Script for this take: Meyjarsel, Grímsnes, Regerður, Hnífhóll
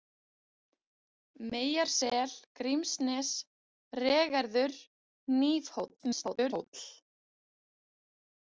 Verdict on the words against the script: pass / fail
fail